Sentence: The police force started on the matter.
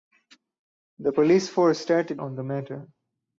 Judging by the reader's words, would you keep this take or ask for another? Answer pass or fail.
pass